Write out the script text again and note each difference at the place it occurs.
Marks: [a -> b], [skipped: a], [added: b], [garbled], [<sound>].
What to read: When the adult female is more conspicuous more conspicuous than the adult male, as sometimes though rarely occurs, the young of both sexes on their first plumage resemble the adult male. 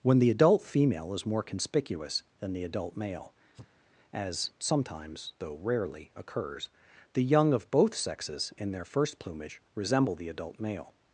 When the adult female is more conspicuous [skipped: more conspicuous] than the adult male, [sneeze] as sometimes though rarely occurs, the young of both sexes [on -> in] their first plumage resemble the adult male.